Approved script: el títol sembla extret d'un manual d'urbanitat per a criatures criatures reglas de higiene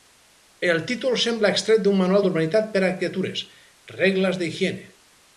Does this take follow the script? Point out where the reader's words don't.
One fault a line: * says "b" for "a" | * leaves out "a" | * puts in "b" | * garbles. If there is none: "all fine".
* leaves out "criatures"